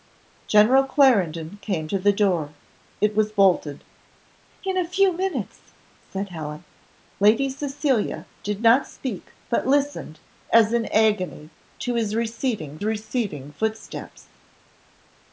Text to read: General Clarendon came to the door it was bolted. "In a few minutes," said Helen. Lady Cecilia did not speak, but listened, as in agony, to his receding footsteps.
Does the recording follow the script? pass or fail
fail